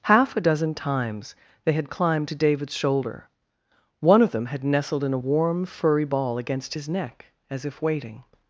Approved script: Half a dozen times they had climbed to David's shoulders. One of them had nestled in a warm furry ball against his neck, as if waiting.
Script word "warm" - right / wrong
right